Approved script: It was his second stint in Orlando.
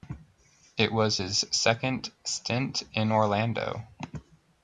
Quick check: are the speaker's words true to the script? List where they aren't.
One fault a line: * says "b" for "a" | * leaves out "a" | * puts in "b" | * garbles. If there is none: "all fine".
all fine